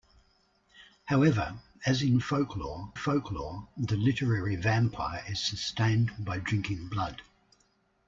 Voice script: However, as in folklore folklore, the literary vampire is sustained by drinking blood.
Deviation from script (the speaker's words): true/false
false